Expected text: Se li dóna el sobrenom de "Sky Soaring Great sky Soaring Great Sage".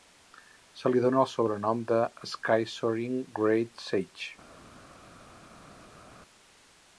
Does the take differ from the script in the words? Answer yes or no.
yes